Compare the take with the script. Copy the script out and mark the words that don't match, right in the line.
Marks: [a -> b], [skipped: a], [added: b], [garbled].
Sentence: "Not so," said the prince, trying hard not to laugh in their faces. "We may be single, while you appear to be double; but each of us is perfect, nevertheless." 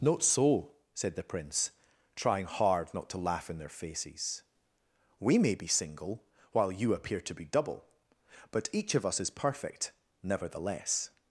"Not so," said the prince, trying hard not to laugh in their faces. "We may be single, while you appear to be double; but each of us is perfect, nevertheless."